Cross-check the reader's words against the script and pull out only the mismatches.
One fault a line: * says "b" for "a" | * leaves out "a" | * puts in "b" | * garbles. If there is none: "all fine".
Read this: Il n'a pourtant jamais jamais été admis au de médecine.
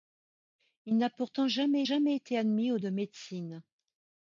all fine